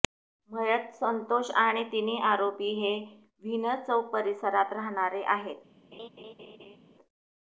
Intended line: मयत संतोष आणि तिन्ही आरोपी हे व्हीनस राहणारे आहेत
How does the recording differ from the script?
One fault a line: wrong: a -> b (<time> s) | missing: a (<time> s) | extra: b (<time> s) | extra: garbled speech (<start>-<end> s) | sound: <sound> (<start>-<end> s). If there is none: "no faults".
extra: चौक परिसरात (3.9 s)
sound: laugh (5.9-6.8 s)